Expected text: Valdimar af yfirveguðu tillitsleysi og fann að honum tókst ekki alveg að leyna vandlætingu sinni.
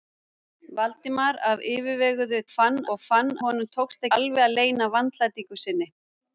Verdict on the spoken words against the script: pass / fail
fail